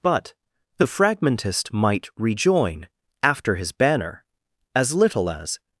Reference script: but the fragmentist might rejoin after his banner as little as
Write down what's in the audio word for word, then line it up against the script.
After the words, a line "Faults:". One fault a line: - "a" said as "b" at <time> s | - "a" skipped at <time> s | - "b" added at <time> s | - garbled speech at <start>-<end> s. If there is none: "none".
but the fragmentist might rejoin after his banner as little as
Faults:
none